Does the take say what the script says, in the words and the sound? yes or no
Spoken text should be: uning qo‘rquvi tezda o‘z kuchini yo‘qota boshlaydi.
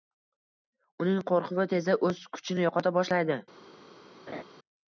no